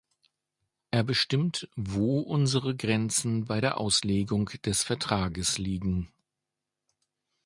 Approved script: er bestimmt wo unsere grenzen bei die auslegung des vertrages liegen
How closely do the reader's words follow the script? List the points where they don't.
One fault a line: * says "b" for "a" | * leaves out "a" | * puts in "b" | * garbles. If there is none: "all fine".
* says "der" for "die"